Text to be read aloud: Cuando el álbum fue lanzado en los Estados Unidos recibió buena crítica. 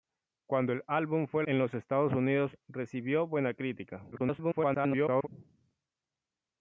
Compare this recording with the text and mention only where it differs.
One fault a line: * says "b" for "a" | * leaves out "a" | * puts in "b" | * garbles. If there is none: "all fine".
* leaves out "lanzado"
* garbles